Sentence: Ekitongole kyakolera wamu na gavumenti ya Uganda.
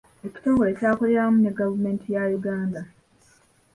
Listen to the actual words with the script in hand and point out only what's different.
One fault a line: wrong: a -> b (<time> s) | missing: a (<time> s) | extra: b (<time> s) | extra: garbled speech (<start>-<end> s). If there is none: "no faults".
wrong: na -> ne (1.4 s)